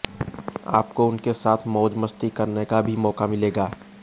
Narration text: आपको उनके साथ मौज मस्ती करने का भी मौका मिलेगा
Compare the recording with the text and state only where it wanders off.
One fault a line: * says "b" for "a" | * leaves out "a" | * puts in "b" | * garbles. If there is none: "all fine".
all fine